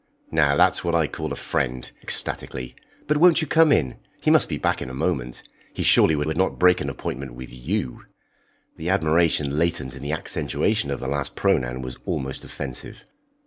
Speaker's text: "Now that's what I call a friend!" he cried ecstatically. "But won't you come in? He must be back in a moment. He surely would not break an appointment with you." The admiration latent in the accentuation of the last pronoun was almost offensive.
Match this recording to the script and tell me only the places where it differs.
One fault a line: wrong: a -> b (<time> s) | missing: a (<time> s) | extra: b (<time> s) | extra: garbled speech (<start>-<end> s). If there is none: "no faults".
missing: he cried (1.9 s)
extra: would (6.2 s)